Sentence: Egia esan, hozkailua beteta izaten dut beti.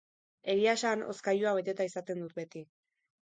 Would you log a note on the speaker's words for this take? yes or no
no